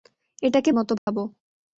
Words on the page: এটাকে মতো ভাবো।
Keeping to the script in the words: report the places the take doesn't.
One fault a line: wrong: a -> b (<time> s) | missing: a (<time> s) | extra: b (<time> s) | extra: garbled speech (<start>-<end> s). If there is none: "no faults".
no faults